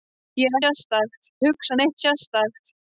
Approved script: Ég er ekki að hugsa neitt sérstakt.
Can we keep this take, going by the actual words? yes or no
no